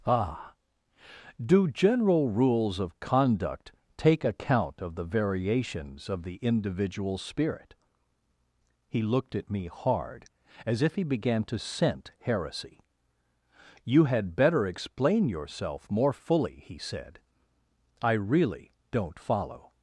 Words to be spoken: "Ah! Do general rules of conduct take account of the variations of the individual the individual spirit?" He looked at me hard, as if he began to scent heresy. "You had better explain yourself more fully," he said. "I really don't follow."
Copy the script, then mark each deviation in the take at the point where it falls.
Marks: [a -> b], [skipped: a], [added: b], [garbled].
"Ah! Do general rules of conduct take account of the variations of the individual [skipped: the individual] spirit?" He looked at me hard, as if he began to scent heresy. "You had better explain yourself more fully," he said. "I really don't follow."